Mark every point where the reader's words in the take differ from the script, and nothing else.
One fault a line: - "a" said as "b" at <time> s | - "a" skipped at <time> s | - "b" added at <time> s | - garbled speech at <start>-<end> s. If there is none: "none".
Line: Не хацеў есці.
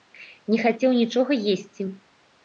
- "нічога" added at 1.0 s